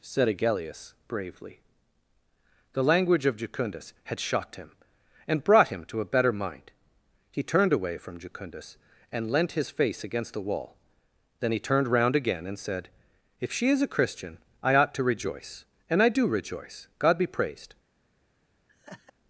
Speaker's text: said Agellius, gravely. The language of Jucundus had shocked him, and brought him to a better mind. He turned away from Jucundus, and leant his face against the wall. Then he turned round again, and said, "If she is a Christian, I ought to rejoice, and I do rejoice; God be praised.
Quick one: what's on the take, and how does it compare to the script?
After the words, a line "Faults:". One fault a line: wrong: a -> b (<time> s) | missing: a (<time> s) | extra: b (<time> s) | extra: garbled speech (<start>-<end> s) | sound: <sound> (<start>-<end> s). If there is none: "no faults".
said Agellius, bravely. The language of Jucundus had shocked him, and brought him to a better mind. He turned away from Jucundus, and leant his face against the wall. Then he turned round again, and said, "If she is a Christian, I ought to rejoice, and I do rejoice; God be praised.
Faults:
wrong: gravely -> bravely (1.1 s)
sound: laugh (18.7-19.1 s)